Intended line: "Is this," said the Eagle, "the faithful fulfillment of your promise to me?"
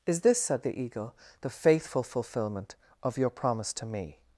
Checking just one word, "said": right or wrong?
right